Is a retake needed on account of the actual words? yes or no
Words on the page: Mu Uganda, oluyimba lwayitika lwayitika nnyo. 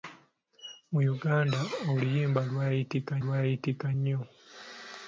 no